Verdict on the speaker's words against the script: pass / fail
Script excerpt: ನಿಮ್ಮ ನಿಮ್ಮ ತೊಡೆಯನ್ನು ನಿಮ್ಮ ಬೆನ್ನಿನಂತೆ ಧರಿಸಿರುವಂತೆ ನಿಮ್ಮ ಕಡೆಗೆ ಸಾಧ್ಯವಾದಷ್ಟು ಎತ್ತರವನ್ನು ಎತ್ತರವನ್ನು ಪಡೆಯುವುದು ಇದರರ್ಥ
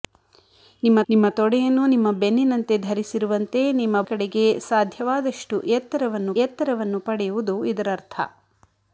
pass